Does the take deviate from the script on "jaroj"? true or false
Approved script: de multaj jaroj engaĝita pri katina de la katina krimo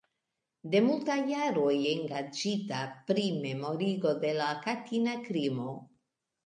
false